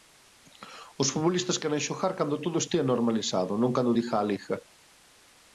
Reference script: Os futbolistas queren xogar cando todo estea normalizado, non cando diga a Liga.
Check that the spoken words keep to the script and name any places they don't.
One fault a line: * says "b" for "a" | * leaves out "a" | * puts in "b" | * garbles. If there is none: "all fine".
all fine